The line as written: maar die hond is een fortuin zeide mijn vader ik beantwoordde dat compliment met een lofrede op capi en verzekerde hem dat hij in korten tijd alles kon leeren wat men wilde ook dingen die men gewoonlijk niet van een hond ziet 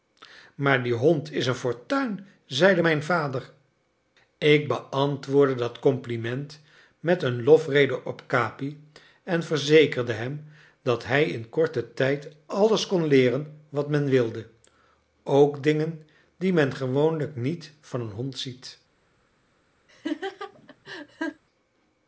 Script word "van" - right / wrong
right